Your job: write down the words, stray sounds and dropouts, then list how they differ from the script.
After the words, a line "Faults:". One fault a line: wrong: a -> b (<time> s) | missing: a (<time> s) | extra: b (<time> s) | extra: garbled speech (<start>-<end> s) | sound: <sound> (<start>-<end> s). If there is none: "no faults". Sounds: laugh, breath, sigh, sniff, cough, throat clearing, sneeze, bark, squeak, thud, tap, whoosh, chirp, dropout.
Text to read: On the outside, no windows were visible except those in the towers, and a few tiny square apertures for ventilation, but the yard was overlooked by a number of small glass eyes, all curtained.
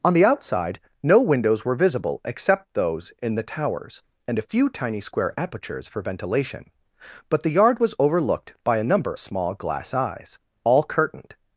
On the outside, no windows were visible except those in the towers, and a few tiny square apertures for ventilation, but the yard was overlooked by a number small glass eyes, all curtained.
Faults:
missing: of (9.1 s)